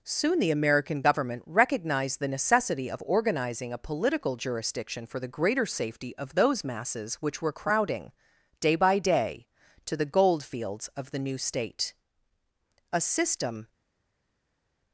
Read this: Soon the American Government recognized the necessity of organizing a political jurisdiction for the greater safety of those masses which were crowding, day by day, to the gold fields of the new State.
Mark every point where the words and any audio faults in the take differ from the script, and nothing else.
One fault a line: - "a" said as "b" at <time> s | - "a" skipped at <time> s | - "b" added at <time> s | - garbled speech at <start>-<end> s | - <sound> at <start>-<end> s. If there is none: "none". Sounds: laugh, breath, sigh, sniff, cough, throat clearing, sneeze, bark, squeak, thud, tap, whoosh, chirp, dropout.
- "A system" added at 12.9 s